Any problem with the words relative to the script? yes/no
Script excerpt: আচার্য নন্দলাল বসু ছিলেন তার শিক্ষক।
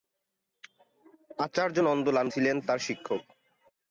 yes